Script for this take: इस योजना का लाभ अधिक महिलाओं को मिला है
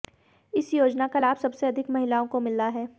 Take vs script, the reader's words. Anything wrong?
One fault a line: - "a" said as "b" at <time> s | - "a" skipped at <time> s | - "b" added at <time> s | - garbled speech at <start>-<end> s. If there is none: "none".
- "सबसे" added at 1.4 s